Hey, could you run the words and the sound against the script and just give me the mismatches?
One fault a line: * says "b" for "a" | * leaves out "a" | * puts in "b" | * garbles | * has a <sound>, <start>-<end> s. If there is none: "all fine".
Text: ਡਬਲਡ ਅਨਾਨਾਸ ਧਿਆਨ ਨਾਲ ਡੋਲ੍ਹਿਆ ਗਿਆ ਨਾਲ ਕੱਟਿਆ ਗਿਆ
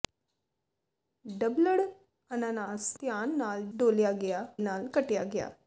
all fine